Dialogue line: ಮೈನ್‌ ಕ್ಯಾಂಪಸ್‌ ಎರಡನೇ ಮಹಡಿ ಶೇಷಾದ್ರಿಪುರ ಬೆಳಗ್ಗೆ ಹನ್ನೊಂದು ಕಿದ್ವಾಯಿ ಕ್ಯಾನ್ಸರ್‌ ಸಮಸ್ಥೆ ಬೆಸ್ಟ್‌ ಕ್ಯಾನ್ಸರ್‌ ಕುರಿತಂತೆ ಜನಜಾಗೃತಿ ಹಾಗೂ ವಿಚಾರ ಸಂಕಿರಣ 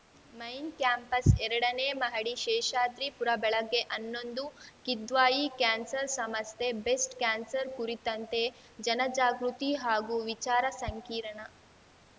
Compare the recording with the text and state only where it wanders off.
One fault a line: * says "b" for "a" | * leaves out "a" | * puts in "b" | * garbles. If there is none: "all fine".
all fine